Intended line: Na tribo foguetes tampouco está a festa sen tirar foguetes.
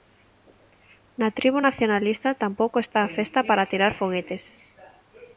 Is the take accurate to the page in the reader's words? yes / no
no